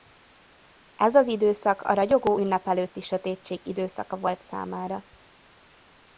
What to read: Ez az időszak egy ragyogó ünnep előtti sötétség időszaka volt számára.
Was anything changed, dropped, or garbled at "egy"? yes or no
yes